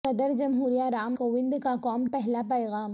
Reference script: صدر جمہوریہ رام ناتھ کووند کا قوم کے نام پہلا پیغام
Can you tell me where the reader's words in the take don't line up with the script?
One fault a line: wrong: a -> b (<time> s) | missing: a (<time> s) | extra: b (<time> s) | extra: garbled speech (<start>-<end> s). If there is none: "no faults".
missing: ناتھ (1.1 s)
missing: کے نام (2.0 s)